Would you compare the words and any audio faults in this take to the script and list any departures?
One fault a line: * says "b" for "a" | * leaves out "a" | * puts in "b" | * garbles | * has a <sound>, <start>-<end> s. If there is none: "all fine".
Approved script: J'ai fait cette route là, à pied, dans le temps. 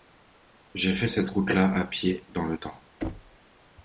* has a thud, 3.0-3.4 s